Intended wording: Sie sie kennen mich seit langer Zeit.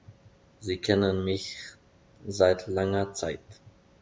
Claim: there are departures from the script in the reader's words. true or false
true